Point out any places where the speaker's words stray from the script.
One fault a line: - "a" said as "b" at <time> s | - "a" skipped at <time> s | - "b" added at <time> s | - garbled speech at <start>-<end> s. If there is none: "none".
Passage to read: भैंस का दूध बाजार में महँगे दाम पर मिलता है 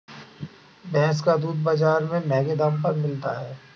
none